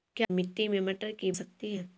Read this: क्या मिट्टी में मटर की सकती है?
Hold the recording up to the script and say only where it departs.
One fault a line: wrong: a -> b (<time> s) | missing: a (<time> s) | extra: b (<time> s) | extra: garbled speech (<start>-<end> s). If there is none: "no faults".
no faults